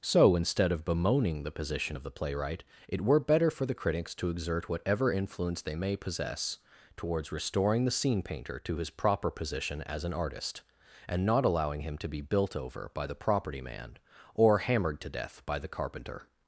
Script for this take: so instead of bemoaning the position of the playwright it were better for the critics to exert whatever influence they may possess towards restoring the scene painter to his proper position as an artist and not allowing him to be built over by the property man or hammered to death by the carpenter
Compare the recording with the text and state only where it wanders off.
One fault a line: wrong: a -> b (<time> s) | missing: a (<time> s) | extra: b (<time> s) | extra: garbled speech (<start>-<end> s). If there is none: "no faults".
no faults